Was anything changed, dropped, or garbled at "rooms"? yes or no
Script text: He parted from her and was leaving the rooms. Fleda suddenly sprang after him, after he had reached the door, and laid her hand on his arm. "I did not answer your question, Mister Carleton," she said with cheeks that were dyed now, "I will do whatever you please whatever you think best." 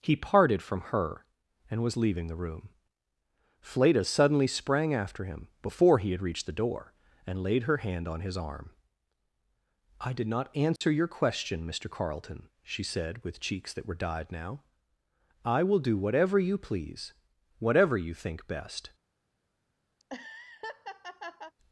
yes